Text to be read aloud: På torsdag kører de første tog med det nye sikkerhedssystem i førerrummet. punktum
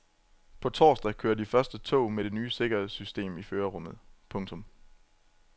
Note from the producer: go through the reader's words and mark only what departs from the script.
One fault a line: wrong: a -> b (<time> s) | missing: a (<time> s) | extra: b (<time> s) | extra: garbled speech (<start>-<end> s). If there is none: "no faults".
no faults